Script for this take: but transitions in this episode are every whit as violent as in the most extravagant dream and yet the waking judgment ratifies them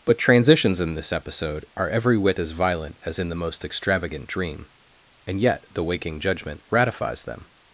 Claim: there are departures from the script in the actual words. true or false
false